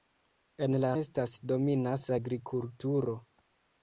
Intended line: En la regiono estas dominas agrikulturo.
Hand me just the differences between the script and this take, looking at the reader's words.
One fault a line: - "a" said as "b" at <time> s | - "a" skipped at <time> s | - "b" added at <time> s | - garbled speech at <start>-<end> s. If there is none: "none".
- "regiono" skipped at 0.9 s